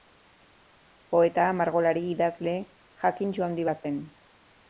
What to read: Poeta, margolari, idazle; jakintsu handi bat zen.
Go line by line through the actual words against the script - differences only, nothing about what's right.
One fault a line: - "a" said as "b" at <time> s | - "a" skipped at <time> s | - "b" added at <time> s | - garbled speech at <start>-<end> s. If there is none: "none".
none